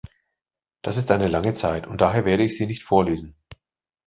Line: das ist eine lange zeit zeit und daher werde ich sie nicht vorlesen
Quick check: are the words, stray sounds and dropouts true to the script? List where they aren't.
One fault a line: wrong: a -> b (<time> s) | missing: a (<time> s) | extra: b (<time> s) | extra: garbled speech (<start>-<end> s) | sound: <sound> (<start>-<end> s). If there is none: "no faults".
missing: zeit (1.9 s)